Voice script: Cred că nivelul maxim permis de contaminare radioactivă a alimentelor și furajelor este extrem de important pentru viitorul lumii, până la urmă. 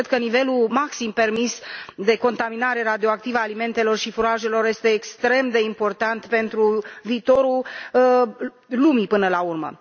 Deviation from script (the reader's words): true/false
false